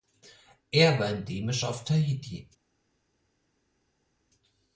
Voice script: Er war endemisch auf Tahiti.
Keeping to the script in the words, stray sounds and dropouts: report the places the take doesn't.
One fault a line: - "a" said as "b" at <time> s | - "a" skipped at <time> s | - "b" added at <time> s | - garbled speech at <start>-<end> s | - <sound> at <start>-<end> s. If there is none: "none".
none